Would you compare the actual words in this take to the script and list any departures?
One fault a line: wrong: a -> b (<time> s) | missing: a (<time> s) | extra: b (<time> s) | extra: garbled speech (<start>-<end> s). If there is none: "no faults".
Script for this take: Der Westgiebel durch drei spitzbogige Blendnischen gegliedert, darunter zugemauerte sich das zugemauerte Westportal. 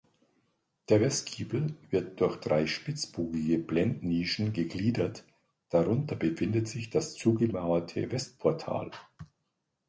extra: wird (1.9 s)
wrong: zugemauerte -> befindet (6.2 s)